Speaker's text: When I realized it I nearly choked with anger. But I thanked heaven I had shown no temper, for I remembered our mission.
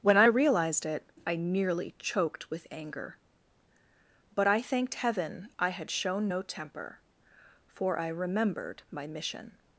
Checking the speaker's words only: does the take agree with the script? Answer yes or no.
no